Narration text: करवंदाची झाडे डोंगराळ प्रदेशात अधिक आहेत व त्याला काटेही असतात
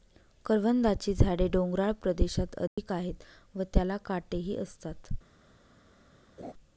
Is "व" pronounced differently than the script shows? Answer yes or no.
no